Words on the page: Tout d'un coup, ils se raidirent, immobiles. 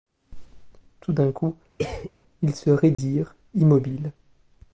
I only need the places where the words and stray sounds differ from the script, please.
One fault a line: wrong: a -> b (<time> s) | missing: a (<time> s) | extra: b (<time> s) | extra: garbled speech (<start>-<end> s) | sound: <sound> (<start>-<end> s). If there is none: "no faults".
sound: cough (1.8-2.1 s)
sound: dropout (2.9-3.0 s)